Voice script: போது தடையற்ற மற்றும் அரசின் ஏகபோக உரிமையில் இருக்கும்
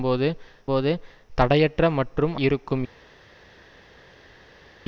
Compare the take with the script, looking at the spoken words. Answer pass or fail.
fail